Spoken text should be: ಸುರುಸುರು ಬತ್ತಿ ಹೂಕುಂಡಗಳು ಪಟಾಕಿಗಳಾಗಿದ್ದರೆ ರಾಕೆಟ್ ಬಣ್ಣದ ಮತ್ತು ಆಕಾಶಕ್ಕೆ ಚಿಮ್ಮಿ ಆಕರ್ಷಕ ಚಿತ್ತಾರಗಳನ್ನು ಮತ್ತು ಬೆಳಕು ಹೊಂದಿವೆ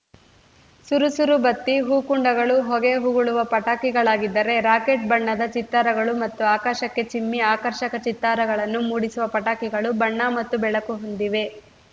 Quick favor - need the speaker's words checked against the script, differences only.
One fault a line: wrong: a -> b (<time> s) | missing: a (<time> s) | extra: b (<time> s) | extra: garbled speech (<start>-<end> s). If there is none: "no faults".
extra: ಹೊಗೆ ಉಗುಳುವ (2.7 s)
extra: ಚಿತ್ತಾರಗಳು (5.5 s)
extra: ಮೂಡಿಸುವ ಪಟಾಕಿಗಳು ಬಣ್ಣ (8.9 s)